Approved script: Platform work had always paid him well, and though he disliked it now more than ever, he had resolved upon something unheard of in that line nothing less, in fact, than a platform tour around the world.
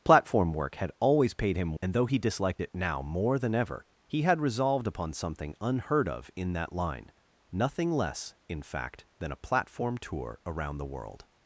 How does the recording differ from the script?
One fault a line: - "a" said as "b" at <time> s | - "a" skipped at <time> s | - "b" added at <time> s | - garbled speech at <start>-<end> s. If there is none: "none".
- "well" skipped at 1.8 s